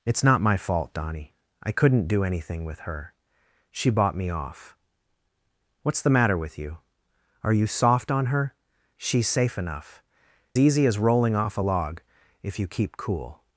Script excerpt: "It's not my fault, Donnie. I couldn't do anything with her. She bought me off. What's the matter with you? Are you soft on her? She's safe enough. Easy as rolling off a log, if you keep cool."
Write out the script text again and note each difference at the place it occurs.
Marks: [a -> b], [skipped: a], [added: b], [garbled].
"It's not my fault, Donnie. I couldn't do anything with her. She bought me off. What's the matter with you? Are you soft on her? She's safe enough. Easy as rolling off a log, if you keep cool."